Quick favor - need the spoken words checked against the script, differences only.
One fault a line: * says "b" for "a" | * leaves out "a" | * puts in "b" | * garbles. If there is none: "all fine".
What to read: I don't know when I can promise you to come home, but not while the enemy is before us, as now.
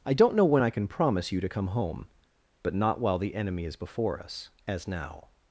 all fine